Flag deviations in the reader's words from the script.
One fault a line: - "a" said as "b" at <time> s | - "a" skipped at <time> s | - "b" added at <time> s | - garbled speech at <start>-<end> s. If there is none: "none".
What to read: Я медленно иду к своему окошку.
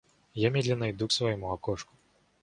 none